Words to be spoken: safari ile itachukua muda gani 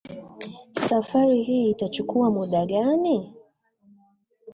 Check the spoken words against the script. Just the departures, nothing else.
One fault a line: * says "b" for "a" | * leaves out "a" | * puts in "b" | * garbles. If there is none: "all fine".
* says "hii" for "ile"